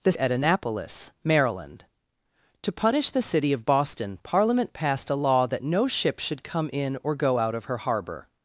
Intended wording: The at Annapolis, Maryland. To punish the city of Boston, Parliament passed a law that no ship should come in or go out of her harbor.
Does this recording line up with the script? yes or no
yes